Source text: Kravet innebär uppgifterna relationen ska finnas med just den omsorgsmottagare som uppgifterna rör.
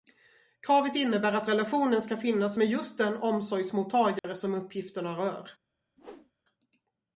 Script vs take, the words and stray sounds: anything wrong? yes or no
yes